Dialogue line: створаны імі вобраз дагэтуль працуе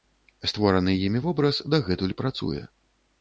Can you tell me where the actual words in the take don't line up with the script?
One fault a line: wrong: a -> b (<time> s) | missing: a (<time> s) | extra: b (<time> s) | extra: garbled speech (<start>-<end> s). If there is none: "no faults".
no faults